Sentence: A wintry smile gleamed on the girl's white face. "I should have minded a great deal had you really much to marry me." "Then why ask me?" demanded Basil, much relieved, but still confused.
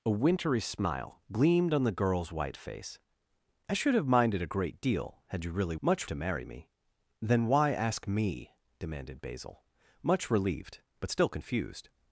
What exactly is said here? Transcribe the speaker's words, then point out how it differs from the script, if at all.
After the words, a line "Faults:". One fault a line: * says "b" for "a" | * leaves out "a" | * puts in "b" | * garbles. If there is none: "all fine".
A wintry smile gleamed on the girl's white face. "I should have minded a great deal had you really much to marry me." "Then why ask me?" demanded Basil, much relieved, but still confused.
Faults:
all fine